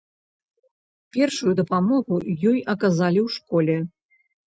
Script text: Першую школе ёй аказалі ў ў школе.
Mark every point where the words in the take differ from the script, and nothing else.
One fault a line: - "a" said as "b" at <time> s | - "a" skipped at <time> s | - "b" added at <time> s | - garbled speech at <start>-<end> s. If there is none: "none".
- "школе" said as "дапамогу" at 1.6 s
- "ў" skipped at 3.4 s